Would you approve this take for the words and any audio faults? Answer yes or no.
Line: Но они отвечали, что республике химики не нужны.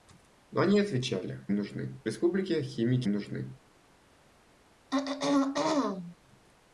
no